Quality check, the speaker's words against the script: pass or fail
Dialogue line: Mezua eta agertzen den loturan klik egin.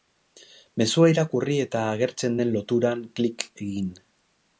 fail